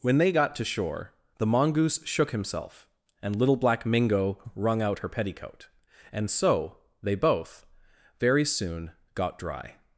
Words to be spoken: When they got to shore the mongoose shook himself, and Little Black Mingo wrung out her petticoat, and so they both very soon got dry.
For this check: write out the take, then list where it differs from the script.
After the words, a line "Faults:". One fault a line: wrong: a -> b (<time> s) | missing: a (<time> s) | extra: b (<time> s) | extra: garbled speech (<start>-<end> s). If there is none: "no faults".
When they got to shore the mongoose shook himself, and Little Black Mingo wrung out her petticoat, and so they both very soon got dry.
Faults:
no faults